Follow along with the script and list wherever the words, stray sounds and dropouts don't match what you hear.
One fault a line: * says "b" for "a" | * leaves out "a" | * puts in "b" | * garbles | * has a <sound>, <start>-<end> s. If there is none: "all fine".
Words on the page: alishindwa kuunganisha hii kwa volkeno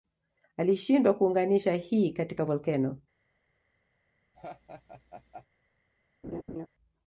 * says "katika" for "kwa"
* has a laugh, 4.3-5.5 s
* has a laugh, 6.2-6.7 s